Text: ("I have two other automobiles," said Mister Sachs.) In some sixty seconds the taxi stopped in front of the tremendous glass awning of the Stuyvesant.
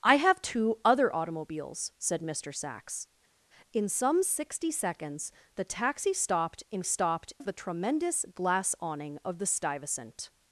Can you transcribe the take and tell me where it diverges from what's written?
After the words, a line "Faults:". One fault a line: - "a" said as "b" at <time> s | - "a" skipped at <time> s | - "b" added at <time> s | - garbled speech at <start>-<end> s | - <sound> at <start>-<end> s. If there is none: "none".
("I have two other automobiles," said Mister Sachs.) In some sixty seconds the taxi stopped in stopped of the tremendous glass awning of the Stuyvesant.
Faults:
- "front" said as "stopped" at 6.8 s